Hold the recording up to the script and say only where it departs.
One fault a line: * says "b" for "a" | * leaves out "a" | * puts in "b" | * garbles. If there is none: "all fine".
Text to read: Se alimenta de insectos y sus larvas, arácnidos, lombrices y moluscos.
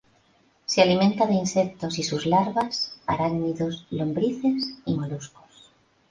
all fine